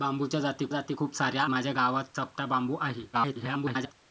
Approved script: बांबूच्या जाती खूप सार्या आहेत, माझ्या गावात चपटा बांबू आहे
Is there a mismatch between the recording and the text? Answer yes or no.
yes